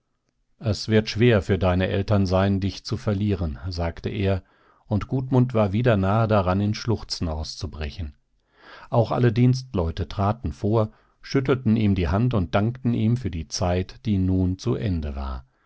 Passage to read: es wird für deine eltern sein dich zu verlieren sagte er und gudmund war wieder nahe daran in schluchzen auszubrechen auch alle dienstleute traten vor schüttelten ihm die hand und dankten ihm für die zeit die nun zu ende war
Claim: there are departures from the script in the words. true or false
true